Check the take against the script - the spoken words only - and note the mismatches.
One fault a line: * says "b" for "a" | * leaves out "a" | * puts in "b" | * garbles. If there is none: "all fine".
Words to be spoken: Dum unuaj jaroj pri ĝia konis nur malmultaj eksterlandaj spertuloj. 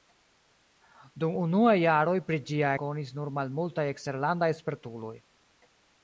all fine